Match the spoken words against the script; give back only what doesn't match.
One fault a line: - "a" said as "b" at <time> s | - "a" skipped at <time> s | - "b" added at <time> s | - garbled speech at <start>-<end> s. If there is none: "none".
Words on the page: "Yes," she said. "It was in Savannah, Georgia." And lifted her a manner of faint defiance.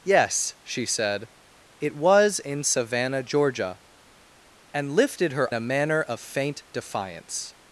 none